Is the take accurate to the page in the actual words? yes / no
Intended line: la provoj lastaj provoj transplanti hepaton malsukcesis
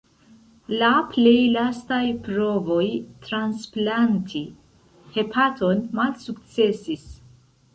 no